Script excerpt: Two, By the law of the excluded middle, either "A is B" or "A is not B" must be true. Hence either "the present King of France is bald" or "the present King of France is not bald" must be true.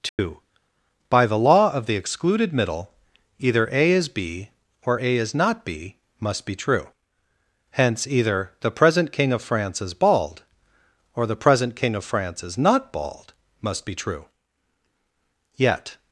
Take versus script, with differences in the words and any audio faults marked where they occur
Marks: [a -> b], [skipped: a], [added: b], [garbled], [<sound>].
Two, [dropout] By the law of the excluded middle, either "A is B" or "A is not B" must be true. Hence either "the present King of France is bald" or "the present King of France is not bald" must be true. [added: Yet]